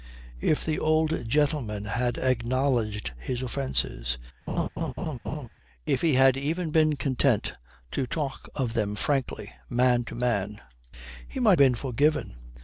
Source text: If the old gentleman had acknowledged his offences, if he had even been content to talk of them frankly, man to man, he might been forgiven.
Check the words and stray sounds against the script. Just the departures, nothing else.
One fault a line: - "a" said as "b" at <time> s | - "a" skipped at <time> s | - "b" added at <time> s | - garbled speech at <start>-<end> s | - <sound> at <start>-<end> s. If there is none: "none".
- laugh at 4.5-5.5 s